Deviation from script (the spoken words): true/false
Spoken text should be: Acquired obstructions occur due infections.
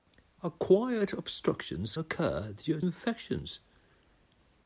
false